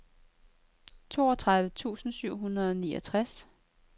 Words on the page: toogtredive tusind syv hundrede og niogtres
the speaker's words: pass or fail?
pass